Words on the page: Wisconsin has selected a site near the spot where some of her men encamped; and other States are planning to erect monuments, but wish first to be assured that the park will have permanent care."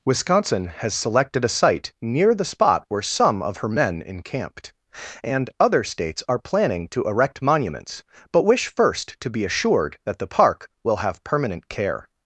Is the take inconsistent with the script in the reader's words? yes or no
no